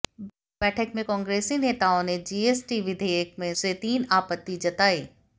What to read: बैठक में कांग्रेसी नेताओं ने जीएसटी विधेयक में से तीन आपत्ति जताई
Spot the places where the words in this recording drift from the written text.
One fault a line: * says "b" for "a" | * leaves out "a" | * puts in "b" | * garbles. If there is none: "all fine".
all fine